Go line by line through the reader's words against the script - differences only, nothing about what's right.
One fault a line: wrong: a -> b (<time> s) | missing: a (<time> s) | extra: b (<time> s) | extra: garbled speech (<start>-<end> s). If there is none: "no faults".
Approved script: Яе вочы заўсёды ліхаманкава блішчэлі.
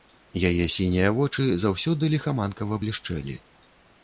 extra: сінія (0.8 s)